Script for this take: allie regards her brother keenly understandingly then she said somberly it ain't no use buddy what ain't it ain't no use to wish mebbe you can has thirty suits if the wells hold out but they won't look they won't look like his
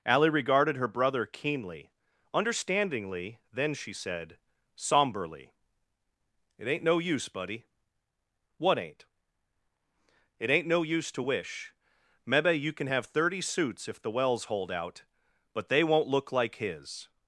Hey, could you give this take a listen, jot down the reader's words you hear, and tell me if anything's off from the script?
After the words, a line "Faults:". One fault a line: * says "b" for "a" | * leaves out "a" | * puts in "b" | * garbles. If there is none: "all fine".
allie regarded her brother keenly understandingly then she said somberly it ain't no use buddy what ain't it ain't no use to wish mebbe you can have thirty suits if the wells hold out but they won't look like his
Faults:
* says "regarded" for "regards"
* says "have" for "has"
* leaves out "they won't look"